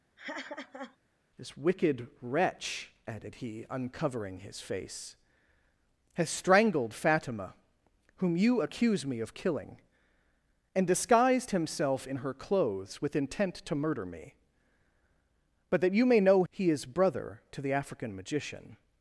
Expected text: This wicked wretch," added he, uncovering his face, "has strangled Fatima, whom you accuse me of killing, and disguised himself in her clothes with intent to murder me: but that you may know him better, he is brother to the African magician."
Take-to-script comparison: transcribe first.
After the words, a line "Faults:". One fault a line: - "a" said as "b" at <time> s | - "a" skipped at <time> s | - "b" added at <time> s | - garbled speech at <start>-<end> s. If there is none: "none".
This wicked wretch," added he, uncovering his face, "has strangled Fatima, whom you accuse me of killing, and disguised himself in her clothes with intent to murder me: but that you may know he is brother to the African magician."
Faults:
- "him better" skipped at 16.4 s